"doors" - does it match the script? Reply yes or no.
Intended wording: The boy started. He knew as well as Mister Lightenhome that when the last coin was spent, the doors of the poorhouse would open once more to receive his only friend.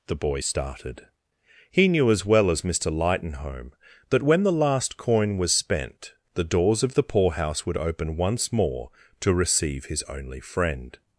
yes